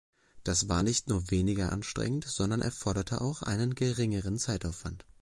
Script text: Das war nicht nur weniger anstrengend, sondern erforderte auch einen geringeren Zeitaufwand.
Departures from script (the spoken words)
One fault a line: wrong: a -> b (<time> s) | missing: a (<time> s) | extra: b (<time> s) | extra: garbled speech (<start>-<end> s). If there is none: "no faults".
no faults